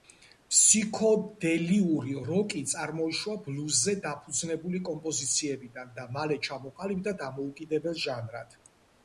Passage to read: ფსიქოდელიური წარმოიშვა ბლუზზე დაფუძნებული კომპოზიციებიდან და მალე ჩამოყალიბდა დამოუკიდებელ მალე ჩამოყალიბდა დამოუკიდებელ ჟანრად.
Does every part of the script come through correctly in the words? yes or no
no